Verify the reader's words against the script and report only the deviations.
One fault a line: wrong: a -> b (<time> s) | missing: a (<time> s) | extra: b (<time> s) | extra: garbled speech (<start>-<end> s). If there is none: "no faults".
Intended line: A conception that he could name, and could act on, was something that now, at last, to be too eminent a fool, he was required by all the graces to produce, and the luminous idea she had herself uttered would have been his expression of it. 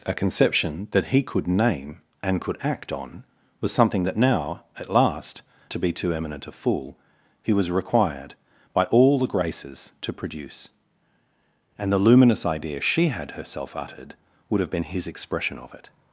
no faults